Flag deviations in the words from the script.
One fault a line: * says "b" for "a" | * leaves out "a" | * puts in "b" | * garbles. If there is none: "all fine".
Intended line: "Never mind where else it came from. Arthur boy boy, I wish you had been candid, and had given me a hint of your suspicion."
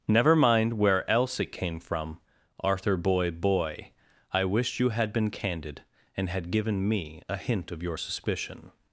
all fine